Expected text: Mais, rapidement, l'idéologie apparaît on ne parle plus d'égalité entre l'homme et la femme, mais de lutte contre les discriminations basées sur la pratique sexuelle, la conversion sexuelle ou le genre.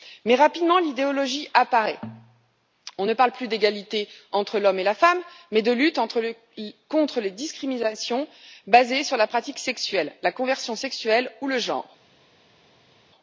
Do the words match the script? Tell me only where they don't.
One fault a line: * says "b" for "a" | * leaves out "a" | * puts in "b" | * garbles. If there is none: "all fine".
all fine